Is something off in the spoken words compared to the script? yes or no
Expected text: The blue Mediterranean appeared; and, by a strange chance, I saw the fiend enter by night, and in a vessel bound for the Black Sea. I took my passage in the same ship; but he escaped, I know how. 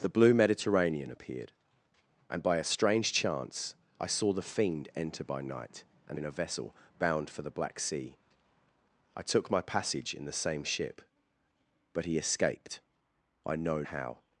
no